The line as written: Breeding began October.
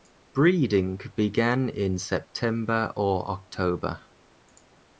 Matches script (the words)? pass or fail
fail